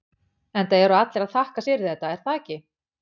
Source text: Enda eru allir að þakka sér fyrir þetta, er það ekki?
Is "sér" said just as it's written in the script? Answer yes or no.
no